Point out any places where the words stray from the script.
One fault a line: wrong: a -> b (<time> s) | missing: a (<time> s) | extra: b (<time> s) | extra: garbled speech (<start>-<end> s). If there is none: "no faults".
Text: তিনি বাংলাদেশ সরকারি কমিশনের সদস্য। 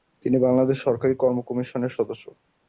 extra: কর্ম (1.1 s)